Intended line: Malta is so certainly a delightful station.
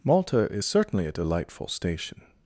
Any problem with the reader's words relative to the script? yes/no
yes